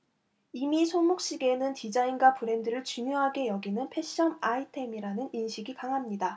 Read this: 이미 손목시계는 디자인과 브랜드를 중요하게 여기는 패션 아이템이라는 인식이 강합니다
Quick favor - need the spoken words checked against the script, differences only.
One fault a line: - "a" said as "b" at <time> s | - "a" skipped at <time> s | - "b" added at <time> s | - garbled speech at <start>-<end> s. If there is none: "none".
none